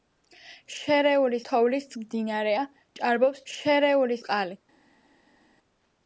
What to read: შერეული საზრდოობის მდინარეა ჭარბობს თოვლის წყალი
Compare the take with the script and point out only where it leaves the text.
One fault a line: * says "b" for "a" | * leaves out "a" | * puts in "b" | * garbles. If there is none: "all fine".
* says "თოვლის" for "საზრდოობის"
* says "შერეული" for "თოვლის"